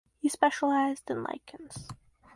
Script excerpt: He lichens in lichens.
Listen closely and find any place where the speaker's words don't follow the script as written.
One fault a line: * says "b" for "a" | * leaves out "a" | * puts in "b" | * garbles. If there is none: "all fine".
* says "specialized" for "lichens"